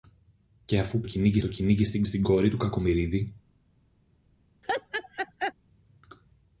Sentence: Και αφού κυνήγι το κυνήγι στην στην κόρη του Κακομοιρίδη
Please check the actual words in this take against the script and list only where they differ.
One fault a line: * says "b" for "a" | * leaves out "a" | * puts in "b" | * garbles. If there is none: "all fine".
all fine